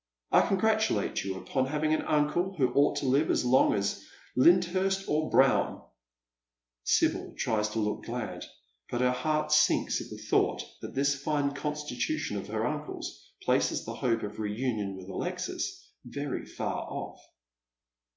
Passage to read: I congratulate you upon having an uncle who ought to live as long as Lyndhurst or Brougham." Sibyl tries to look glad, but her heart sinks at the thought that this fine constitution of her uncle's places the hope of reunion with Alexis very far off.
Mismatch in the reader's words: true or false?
false